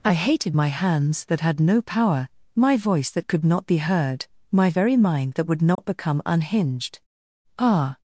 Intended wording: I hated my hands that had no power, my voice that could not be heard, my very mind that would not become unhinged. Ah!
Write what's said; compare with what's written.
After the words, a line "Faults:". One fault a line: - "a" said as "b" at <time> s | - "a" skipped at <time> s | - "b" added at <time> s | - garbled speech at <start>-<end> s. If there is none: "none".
I hated my hands that had no power, my voice that could not be heard, my very mind that would not become unhinged. Ah!
Faults:
none